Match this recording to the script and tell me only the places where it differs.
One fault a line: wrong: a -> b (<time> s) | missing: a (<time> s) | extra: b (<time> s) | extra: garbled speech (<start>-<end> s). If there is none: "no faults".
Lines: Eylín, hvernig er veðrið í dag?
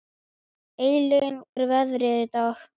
missing: hvernig (1.4 s)